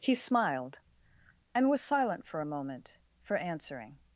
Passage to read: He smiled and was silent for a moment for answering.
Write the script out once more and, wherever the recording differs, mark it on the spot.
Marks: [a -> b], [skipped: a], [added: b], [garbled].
He smiled and was silent for a moment for answering.